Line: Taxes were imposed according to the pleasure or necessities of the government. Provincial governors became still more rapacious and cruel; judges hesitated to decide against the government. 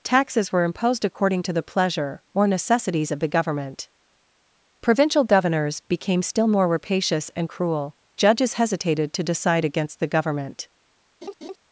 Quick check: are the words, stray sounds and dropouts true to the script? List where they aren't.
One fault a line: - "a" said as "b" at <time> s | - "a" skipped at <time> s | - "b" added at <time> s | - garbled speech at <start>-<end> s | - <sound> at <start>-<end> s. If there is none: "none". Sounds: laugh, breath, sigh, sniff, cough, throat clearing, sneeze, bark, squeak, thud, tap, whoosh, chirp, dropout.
- laugh at 11.2-11.6 s